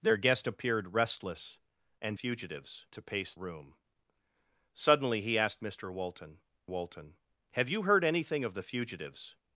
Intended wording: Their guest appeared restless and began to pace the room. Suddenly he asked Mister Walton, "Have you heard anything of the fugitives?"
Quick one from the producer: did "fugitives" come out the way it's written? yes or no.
yes